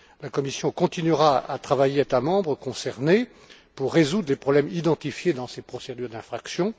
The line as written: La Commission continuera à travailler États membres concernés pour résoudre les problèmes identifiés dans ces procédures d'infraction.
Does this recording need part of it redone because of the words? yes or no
no